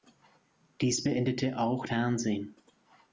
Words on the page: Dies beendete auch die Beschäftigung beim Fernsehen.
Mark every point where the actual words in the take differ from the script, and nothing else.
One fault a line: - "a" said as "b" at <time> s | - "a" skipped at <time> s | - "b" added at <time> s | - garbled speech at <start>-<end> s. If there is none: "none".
- "die Beschäftigung beim" skipped at 1.8 s